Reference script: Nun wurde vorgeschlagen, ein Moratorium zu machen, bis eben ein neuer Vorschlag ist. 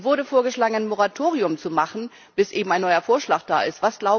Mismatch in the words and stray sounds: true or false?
true